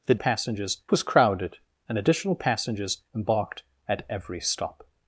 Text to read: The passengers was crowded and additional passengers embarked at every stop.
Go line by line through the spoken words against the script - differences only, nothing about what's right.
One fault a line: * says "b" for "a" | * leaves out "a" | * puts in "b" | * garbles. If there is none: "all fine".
all fine